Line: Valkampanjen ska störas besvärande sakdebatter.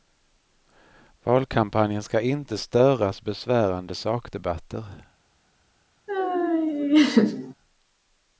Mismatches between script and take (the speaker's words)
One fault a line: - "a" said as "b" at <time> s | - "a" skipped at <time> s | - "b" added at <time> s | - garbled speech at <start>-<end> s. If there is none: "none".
- "inte" added at 2.2 s